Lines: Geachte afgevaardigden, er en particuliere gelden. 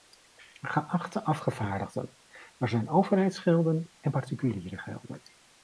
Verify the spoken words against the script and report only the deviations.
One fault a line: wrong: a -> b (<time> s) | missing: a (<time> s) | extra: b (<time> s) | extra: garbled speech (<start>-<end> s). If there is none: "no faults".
extra: zijn overheidsgelden (2.7 s)